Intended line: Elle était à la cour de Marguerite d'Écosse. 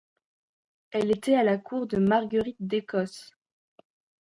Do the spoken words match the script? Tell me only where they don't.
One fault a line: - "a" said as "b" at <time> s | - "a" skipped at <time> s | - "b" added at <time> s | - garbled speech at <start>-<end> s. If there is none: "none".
none